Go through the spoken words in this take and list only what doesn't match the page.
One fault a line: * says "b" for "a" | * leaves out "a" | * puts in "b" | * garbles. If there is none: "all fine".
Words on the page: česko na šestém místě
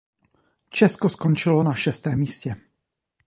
* puts in "skončilo"